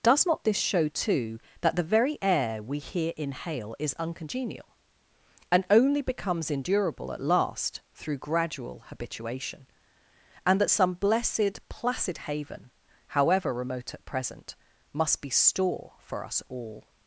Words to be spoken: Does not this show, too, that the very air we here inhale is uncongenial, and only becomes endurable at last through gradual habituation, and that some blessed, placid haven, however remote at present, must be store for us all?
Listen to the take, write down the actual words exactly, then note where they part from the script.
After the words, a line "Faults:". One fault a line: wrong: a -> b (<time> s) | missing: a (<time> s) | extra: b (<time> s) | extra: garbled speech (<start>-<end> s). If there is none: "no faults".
Does not this show, too, that the very air we here inhale is uncongenial, and only becomes endurable at last through gradual habituation, and that some blessed, placid haven, however remote at present, must be store for us all?
Faults:
no faults